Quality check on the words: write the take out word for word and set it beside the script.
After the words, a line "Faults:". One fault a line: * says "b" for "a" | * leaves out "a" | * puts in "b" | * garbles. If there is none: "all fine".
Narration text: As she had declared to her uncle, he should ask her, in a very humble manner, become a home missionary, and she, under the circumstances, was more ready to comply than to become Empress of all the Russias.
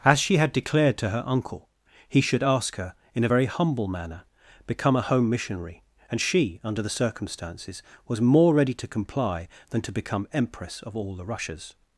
As she had declared to her uncle, he should ask her, in a very humble manner, become a home missionary, and she, under the circumstances, was more ready to comply than to become Empress of all the Russias.
Faults:
all fine